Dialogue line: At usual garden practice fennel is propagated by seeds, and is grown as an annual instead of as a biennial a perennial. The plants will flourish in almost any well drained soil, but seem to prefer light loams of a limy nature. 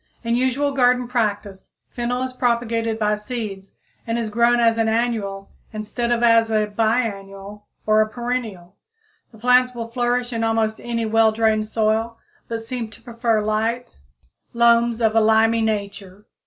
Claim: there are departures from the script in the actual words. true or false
true